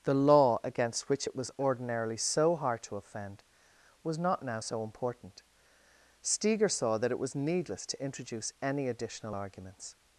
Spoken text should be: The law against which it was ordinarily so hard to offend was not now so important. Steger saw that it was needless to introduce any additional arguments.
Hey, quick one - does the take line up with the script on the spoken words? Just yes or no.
yes